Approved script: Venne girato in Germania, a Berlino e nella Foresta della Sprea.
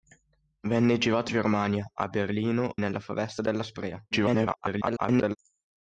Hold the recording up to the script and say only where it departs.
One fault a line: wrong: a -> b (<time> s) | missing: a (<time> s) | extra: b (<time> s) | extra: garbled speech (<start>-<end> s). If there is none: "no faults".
missing: in (1.3 s)
missing: e (2.8 s)
extra: garbled speech (4.1-5.4 s)